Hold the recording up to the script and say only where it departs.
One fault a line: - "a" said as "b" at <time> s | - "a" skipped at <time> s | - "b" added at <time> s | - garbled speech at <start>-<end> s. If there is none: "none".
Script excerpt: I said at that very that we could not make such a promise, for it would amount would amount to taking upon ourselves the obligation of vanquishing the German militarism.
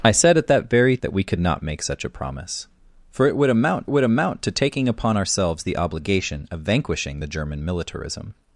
none